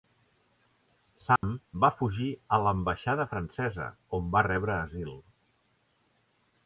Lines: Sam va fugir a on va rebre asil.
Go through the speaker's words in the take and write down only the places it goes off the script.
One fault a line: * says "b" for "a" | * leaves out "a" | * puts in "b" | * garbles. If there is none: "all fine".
* puts in "l'ambaixada francesa"